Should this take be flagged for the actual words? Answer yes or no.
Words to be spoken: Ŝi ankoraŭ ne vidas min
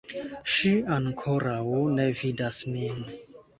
no